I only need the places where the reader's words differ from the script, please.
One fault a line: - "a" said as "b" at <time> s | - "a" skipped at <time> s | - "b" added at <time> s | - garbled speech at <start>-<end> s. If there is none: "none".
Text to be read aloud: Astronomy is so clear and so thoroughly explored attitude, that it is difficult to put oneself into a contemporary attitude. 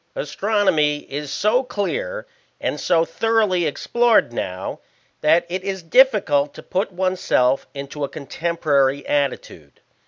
- "attitude" said as "now" at 4.3 s